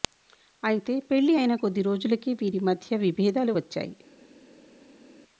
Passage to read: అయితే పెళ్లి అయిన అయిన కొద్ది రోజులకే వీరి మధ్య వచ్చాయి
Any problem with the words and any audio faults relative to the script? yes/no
yes